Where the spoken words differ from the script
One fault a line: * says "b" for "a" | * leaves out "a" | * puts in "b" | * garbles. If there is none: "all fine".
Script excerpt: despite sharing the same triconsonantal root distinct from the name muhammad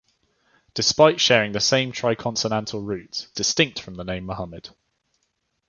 all fine